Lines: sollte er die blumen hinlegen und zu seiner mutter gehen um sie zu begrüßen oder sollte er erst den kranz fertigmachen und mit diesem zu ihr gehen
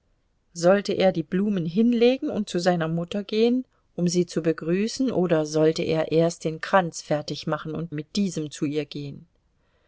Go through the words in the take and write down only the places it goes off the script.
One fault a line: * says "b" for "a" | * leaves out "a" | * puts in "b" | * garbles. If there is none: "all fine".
all fine